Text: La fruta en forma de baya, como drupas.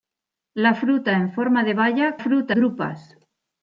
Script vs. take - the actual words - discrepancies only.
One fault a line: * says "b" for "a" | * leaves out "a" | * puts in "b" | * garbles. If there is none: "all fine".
* says "fruta" for "como"